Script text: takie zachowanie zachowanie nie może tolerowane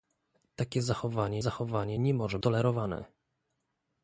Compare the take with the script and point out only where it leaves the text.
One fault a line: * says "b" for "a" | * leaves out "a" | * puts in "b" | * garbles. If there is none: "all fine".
all fine